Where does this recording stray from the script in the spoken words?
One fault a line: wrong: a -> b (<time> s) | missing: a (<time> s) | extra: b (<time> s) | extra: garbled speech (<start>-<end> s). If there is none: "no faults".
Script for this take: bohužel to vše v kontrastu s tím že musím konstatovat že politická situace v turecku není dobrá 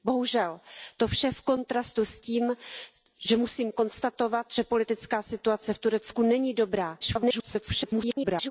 extra: garbled speech (7.0-8.5 s)